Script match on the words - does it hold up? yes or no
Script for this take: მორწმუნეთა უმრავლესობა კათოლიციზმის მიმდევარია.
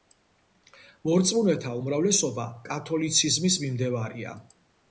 yes